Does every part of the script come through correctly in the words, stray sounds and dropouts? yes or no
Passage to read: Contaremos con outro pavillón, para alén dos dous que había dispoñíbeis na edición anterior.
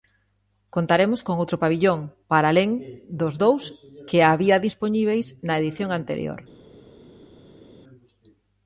yes